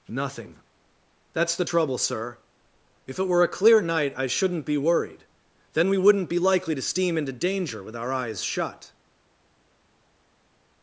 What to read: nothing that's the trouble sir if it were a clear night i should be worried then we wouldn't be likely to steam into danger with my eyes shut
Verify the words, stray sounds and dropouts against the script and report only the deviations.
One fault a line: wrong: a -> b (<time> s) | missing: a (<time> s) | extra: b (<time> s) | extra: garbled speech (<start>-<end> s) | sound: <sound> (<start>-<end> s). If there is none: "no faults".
wrong: should -> shouldn't (4.3 s)
wrong: my -> our (8.0 s)